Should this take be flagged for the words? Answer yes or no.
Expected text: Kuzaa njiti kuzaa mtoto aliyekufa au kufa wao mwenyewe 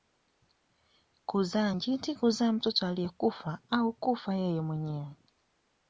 yes